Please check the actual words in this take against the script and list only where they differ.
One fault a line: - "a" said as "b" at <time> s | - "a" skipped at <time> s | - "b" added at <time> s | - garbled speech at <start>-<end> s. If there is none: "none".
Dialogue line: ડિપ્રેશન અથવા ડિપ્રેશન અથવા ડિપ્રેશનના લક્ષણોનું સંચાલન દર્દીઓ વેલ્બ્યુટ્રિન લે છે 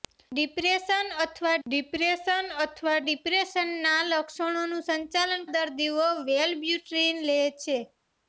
none